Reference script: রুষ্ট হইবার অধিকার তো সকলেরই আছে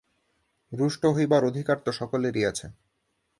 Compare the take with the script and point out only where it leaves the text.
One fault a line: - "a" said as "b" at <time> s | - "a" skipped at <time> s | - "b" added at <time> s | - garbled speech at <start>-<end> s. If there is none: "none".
none